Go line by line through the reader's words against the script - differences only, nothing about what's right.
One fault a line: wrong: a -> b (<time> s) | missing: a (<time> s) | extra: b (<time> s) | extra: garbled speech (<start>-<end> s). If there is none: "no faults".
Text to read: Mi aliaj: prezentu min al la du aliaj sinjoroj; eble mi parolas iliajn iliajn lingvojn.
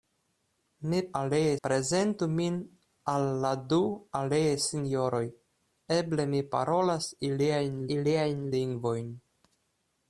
no faults